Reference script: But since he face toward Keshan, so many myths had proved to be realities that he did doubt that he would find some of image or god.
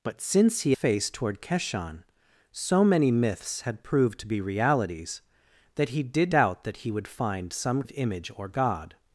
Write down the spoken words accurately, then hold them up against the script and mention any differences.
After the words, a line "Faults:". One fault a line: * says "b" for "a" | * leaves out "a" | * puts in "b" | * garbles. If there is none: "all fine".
But since he face toward Keshan, so many myths had proved to be realities that he did doubt that he would find some of image or god.
Faults:
all fine